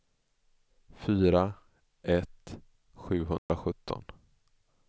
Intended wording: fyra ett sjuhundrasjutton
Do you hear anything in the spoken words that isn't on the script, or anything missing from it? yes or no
no